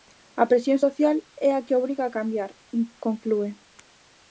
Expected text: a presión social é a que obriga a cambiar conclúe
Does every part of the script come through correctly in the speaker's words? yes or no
yes